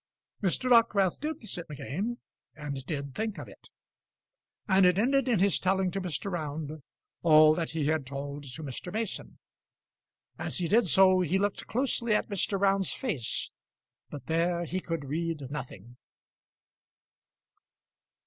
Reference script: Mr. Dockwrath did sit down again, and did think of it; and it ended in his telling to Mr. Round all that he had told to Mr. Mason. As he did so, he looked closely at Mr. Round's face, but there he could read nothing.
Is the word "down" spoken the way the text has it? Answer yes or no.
no